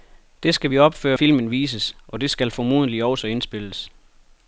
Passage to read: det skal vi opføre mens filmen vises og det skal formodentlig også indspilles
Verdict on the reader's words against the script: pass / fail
fail